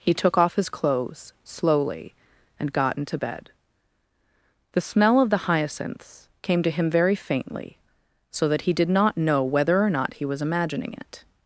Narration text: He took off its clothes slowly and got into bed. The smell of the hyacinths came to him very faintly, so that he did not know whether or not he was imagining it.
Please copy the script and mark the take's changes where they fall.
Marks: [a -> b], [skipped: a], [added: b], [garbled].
He took off [its -> his] clothes slowly and got into bed. The smell of the hyacinths came to him very faintly, so that he did not know whether or not he was imagining it.